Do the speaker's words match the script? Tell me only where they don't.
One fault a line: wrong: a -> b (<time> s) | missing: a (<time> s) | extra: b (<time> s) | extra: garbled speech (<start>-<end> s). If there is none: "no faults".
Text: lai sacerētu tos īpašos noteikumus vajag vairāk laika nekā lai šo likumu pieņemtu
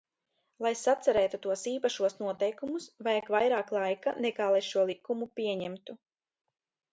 no faults